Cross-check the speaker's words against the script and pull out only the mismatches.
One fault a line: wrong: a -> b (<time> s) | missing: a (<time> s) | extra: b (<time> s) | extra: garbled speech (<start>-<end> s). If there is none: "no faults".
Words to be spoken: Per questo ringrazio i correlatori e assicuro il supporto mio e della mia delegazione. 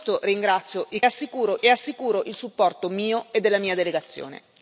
wrong: correlatori -> assicuro (1.0 s)